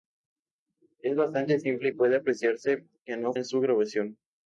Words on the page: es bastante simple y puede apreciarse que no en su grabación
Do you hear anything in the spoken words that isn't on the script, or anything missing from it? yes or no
no